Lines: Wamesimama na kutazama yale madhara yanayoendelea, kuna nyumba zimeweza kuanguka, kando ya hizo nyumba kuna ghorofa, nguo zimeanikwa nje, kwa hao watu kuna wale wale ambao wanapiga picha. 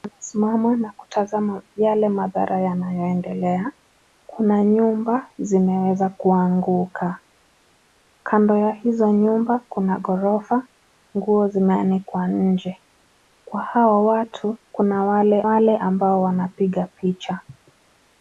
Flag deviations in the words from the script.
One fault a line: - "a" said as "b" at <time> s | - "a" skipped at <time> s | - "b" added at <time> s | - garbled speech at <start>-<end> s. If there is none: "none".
none